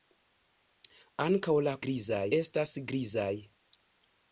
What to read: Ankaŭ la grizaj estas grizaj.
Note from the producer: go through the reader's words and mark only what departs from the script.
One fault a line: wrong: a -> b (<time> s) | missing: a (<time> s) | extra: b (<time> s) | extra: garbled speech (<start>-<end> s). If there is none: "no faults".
no faults